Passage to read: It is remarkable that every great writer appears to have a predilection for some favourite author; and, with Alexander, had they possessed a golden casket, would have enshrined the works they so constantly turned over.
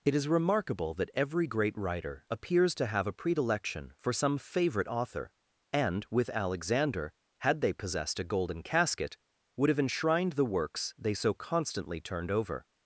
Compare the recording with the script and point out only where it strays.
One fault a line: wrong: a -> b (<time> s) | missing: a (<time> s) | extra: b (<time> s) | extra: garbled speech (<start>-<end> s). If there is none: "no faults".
no faults